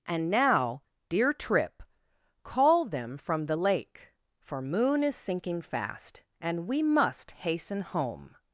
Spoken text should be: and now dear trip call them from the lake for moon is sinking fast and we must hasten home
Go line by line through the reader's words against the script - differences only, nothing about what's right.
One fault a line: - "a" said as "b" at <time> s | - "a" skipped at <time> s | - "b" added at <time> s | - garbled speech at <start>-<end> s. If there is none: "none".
none